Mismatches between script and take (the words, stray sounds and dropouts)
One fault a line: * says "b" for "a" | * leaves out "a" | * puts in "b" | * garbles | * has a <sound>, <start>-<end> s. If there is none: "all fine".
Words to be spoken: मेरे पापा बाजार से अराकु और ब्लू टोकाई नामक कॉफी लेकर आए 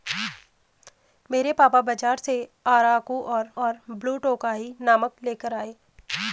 * puts in "और"
* leaves out "कॉफी"